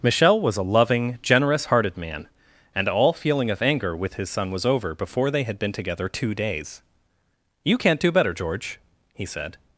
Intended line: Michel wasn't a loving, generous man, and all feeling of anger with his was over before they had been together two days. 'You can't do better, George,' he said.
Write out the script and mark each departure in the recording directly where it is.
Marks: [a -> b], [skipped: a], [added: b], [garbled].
Michel [wasn't -> was] a loving, generous [added: hearted] man, and all feeling of anger with his [added: son] was over before they had been together two days. 'You can't do better, George,' he said.